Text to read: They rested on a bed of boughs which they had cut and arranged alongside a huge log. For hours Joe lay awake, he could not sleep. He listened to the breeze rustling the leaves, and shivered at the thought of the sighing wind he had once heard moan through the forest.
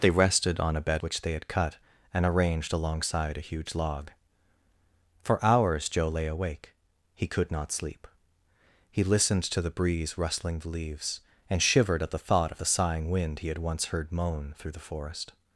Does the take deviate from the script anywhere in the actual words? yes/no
yes